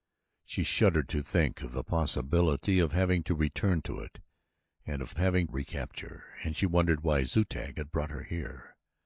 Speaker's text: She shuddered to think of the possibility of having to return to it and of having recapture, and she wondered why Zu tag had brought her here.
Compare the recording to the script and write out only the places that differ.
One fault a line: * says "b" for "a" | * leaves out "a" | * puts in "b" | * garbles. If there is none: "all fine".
all fine